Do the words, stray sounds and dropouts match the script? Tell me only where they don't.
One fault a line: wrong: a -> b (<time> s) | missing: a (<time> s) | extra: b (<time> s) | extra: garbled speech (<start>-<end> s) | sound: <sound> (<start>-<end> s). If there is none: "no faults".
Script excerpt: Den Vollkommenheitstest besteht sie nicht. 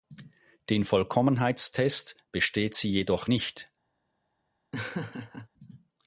extra: jedoch (2.9 s)
sound: laugh (4.7-5.5 s)